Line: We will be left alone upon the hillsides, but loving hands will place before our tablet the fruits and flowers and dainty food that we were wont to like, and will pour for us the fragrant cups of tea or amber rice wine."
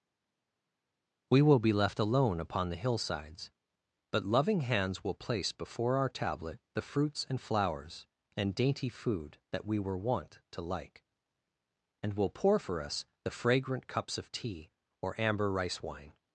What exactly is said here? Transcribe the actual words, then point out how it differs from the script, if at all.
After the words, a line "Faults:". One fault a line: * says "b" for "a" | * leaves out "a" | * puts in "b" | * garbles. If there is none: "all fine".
We will be left alone upon the hillsides, but loving hands will place before our tablet the fruits and flowers and dainty food that we were wont to like, and will pour for us the fragrant cups of tea or amber rice wine."
Faults:
all fine